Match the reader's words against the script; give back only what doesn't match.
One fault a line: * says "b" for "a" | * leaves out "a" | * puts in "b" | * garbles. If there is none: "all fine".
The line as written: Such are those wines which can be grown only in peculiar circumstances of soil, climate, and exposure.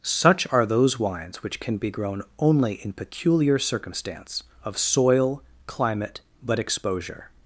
* says "circumstance" for "circumstances"
* says "but" for "and"